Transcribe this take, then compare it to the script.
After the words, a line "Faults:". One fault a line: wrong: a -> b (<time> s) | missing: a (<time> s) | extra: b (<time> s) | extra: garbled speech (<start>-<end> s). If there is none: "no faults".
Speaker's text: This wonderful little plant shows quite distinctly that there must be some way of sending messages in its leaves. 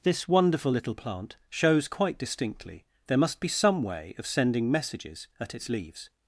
This wonderful little plant shows quite distinctly there must be some way of sending messages at its leaves.
Faults:
missing: that (2.8 s)
wrong: in -> at (5.4 s)